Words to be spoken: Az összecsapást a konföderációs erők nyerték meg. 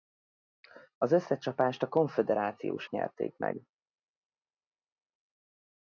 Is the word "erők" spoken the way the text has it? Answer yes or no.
no